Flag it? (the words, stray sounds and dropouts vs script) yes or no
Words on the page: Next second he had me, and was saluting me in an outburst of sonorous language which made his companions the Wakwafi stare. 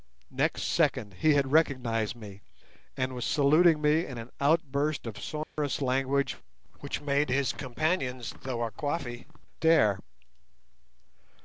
yes